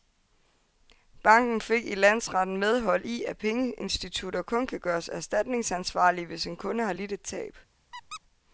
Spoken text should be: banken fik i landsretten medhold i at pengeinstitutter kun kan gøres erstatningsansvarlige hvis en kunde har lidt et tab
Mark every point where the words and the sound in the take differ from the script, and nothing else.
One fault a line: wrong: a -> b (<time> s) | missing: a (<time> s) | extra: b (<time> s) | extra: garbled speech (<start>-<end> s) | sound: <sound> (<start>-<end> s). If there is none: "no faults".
sound: squeak (7.9-8.2 s)